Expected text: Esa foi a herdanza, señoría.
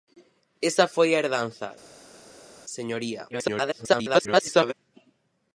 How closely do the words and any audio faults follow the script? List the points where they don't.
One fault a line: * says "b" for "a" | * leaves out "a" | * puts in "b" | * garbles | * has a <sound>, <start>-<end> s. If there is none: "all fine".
* garbles